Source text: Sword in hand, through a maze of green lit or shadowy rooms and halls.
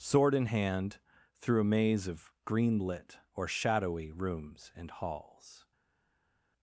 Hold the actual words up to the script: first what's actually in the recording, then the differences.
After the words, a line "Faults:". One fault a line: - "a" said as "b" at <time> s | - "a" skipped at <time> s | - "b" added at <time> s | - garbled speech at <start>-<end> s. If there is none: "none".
Sword in hand, through a maze of green lit or shadowy rooms and halls.
Faults:
none